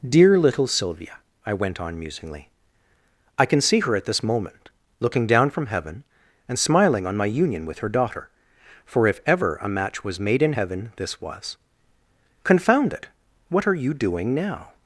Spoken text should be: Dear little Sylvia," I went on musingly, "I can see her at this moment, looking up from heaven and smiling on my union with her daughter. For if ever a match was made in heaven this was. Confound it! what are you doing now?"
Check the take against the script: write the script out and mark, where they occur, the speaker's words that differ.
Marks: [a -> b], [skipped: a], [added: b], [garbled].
Dear little Sylvia," I went on musingly, "I can see her at this moment, looking [up -> down] from heaven and smiling on my union with her daughter. For if ever a match was made in heaven this was. Confound it! what are you doing now?"